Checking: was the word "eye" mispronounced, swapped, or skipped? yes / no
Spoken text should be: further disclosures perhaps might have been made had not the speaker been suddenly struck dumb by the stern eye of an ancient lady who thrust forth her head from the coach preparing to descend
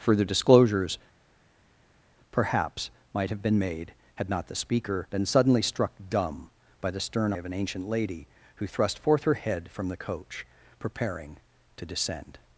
yes